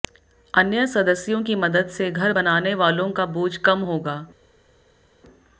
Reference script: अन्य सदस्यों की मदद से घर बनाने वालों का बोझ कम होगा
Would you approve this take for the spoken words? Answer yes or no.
yes